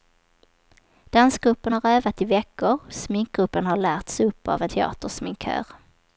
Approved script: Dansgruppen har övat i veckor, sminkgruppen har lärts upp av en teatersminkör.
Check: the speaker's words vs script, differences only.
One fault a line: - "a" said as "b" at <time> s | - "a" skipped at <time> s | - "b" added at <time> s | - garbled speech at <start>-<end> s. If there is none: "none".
none